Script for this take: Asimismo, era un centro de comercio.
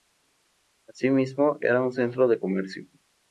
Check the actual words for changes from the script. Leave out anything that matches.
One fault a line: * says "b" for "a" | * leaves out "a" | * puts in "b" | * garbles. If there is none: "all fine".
all fine